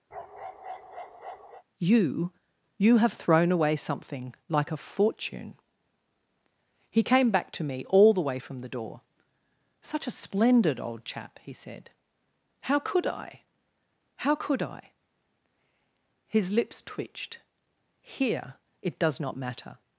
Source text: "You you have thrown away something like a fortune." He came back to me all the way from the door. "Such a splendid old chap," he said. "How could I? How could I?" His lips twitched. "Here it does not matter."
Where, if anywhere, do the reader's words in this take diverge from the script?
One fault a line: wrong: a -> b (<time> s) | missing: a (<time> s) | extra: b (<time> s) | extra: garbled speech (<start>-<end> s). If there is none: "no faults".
no faults